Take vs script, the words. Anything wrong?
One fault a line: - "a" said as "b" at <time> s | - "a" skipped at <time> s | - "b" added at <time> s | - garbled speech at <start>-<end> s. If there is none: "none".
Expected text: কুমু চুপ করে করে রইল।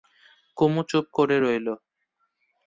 - "করে" skipped at 1.4 s